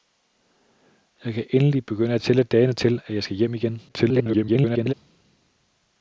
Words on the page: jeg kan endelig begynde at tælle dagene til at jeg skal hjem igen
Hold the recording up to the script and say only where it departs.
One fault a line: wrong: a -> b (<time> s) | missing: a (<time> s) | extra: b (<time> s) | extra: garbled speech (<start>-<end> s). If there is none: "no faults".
extra: garbled speech (3.9-4.9 s)